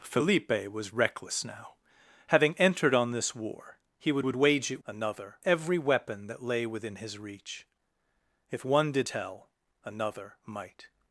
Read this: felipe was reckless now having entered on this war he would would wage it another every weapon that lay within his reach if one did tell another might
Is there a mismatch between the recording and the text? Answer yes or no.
no